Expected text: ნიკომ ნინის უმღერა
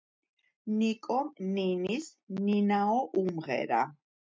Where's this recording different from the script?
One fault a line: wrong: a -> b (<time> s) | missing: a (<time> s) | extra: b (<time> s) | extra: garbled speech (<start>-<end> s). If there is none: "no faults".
extra: ნინაო (2.5 s)